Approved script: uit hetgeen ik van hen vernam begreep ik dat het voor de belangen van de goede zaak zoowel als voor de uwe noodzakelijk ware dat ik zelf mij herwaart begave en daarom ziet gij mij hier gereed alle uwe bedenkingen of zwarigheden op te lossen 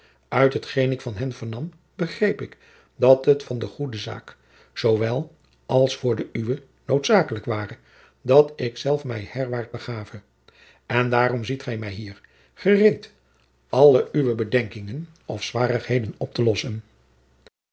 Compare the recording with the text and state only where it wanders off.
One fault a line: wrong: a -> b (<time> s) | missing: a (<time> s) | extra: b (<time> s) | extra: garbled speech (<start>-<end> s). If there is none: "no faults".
missing: voor de belangen (3.4 s)